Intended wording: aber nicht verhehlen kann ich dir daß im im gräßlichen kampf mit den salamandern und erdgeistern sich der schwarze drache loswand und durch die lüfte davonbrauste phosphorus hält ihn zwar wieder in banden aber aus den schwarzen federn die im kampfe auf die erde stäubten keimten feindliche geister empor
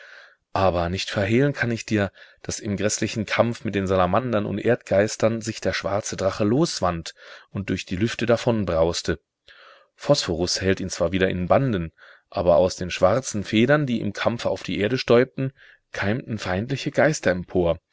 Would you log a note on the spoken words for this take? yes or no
yes